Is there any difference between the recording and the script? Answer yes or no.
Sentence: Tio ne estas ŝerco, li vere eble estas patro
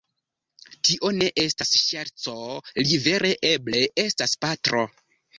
no